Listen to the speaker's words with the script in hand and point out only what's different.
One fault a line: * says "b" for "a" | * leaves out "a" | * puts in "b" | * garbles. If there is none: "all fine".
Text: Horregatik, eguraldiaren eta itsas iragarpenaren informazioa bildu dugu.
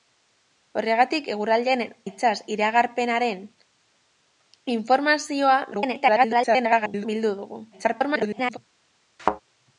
* leaves out "eta"
* garbles
* garbles